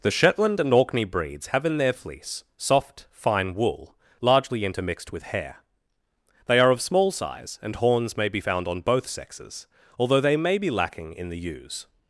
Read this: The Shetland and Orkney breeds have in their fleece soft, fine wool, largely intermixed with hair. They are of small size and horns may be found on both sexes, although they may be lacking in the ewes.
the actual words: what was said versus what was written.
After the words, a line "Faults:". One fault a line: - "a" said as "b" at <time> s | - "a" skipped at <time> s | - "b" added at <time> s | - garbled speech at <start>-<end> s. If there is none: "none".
The Shetland and Orkney breeds have in their fleece soft, fine wool, largely intermixed with hair. They are of small size and horns may be found on both sexes, although they may be lacking in the ewes.
Faults:
none